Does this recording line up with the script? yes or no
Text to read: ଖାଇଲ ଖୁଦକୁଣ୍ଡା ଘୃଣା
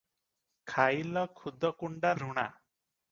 yes